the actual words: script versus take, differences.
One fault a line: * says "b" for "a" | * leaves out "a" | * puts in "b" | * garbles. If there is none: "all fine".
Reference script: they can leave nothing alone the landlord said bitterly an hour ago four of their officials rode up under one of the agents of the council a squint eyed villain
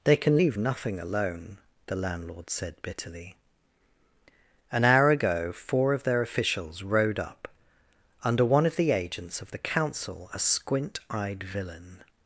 all fine